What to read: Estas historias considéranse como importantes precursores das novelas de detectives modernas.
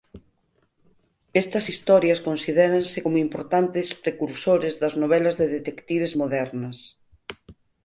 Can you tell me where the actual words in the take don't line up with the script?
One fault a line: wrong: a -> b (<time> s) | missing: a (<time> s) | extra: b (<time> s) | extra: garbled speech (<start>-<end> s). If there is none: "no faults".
no faults